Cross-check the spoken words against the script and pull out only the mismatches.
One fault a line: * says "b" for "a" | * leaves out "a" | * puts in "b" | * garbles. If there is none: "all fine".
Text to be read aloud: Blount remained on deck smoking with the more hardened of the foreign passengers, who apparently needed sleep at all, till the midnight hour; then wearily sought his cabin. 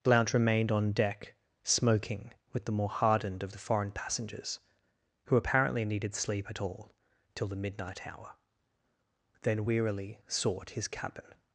all fine